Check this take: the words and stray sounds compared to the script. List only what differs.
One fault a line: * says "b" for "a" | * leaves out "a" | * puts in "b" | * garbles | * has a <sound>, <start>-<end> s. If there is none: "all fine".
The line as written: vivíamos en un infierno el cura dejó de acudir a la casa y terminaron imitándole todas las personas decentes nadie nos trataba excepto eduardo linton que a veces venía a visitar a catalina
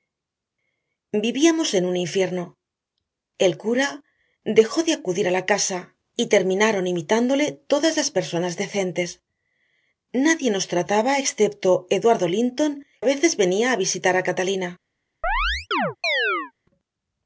* leaves out "que"
* has a chirp, 15.2-16.5 s